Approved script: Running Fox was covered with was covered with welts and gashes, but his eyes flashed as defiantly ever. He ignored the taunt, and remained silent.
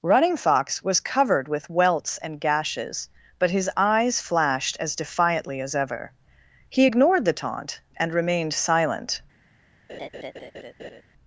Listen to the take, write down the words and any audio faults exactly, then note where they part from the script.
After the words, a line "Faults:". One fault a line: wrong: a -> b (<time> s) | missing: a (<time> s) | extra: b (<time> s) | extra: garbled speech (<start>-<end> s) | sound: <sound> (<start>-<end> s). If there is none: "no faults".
Running Fox was covered with welts and gashes, but his eyes flashed as defiantly as ever. He ignored the taunt, and remained silent.
Faults:
missing: was covered with (1.7 s)
extra: as (5.6 s)
sound: laugh (9.9-11.0 s)